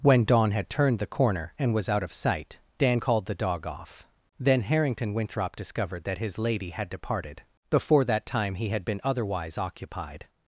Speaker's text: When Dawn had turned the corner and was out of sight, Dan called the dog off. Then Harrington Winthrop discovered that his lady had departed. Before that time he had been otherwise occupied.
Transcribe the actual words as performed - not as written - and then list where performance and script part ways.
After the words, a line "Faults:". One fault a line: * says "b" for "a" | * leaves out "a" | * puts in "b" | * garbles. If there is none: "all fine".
When Dawn had turned the corner and was out of sight, Dan called the dog off. Then Harrington Winthrop discovered that his lady had departed. Before that time he had been otherwise occupied.
Faults:
all fine